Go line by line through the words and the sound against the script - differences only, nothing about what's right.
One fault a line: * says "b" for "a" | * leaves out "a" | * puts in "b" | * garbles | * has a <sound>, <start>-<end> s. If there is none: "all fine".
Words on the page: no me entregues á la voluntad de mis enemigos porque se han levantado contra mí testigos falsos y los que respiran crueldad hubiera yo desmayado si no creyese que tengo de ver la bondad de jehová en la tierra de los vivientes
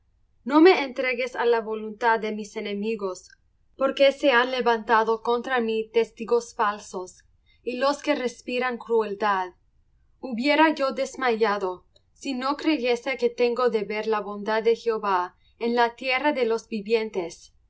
all fine